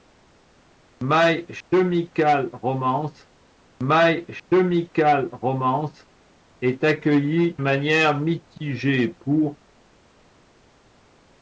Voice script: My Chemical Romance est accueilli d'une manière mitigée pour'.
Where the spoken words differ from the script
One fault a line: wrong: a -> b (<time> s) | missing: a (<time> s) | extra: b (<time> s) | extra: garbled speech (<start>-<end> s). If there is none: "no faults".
extra: my Chemical Romance (3.8 s)
missing: d'une (7.6 s)